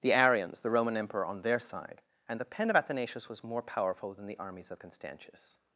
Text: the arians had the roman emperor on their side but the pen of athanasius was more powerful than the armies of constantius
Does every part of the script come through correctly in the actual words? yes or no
no